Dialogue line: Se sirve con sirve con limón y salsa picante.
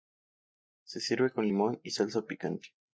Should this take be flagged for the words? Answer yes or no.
yes